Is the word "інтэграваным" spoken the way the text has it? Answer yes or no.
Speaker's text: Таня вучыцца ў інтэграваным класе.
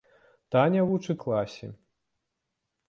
no